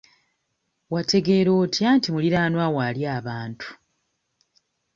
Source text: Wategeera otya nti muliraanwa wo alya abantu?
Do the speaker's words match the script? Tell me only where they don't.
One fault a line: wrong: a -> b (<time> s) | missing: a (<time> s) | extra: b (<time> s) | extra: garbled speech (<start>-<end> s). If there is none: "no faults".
no faults